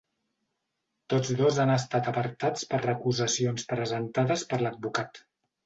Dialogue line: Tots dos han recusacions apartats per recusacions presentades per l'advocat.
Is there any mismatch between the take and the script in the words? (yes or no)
yes